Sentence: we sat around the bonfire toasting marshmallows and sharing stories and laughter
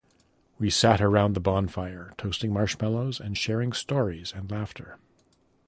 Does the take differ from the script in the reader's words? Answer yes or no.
no